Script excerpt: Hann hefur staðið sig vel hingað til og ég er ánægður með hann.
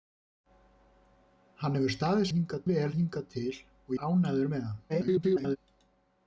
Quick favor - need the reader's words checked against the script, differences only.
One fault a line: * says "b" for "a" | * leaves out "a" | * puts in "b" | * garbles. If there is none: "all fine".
* says "hingað" for "sig"
* leaves out "ég"
* garbles